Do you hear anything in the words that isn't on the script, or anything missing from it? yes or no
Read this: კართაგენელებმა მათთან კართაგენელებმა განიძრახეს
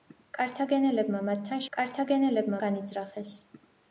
no